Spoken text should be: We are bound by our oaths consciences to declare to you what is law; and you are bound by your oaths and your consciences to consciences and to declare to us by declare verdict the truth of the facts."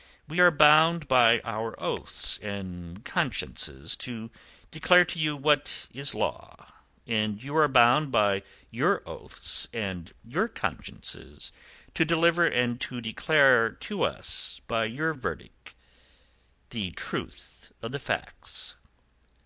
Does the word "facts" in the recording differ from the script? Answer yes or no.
no